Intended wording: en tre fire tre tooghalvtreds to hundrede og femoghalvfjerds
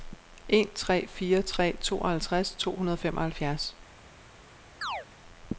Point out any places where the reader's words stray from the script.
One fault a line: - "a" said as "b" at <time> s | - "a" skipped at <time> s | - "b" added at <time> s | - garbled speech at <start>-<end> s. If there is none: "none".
none